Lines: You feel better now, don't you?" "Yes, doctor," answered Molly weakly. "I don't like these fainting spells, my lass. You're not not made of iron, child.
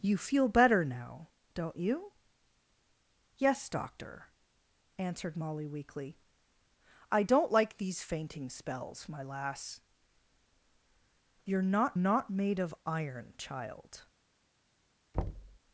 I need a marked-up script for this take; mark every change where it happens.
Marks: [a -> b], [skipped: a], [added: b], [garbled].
You feel better now, don't you?" "Yes, doctor," answered Molly weakly. "I don't like these fainting spells, my lass. You're not not made of iron, child.